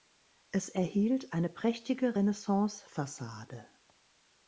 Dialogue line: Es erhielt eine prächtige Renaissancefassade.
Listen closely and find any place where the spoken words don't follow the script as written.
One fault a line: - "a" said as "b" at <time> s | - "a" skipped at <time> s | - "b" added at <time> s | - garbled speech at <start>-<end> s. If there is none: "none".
none